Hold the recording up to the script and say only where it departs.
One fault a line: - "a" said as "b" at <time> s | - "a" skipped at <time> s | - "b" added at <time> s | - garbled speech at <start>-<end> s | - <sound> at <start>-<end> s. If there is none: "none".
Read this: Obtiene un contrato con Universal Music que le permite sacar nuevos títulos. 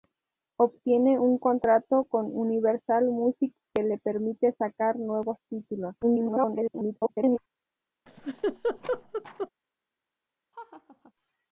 - garbled speech at 6.0-7.4 s
- laugh at 8.1-9.5 s
- laugh at 10.5-11.1 s